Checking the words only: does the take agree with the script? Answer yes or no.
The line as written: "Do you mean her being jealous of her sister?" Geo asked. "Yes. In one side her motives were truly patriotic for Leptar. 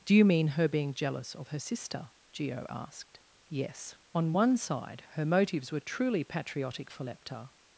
no